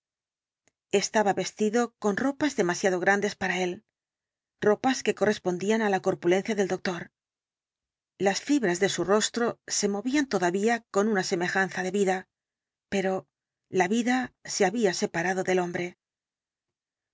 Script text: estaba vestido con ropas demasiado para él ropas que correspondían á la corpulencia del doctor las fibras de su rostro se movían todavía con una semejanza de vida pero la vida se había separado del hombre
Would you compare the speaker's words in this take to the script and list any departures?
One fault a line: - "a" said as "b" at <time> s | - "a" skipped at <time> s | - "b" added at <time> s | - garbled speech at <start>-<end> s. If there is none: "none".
- "grandes" added at 3.0 s